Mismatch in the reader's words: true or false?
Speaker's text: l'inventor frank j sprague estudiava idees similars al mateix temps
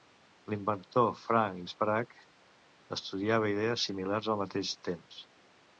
true